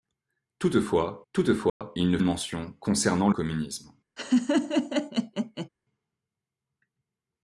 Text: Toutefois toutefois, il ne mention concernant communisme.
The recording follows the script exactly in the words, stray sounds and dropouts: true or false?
false